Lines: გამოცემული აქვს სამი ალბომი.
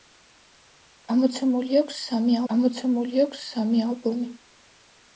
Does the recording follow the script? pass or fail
fail